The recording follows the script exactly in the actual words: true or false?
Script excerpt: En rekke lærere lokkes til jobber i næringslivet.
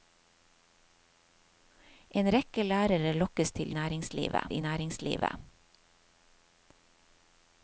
false